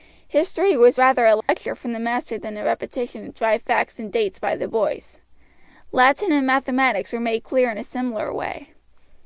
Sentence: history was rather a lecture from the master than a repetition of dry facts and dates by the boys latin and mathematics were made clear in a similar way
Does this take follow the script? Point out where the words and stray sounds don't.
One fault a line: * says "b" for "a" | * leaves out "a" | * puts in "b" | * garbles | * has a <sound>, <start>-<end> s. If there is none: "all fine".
* has a dropout, 1.4-1.5 s